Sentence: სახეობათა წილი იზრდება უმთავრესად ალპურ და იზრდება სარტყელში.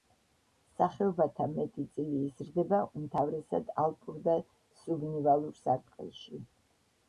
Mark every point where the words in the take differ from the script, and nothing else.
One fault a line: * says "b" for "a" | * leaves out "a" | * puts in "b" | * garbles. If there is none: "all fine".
* puts in "მეტი"
* says "სუბნივალურ" for "იზრდება"